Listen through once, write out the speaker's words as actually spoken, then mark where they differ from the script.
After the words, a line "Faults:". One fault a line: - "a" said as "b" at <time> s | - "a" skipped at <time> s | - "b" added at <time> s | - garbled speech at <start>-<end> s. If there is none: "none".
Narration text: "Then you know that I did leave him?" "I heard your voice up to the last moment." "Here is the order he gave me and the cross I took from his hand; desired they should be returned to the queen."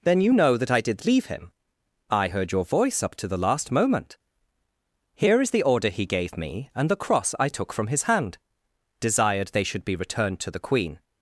"Then you know that I did leave him?" "I heard your voice up to the last moment." "Here is the order he gave me and the cross I took from his hand; desired they should be returned to the queen."
Faults:
none